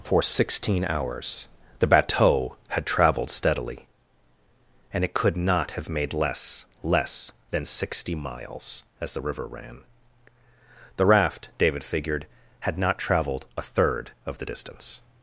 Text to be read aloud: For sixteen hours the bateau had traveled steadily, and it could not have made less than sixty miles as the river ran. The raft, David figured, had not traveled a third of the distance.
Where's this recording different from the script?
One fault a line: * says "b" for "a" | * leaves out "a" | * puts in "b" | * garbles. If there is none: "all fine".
* puts in "less"